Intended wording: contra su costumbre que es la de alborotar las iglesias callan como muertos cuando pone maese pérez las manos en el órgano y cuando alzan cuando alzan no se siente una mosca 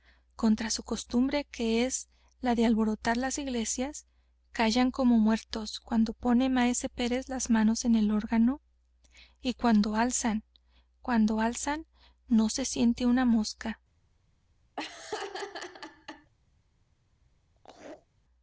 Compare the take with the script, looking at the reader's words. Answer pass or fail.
pass